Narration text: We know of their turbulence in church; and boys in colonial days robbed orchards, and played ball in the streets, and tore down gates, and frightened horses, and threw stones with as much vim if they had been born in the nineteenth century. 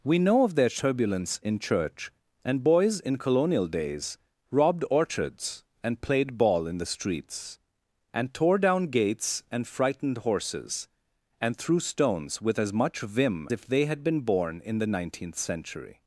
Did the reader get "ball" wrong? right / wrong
right